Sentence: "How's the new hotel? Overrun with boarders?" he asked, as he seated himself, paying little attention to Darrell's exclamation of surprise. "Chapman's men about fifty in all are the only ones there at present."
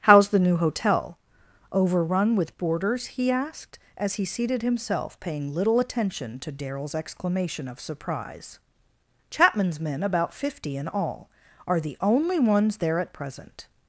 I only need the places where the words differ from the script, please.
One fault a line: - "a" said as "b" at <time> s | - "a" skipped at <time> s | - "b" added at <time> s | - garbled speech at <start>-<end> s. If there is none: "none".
none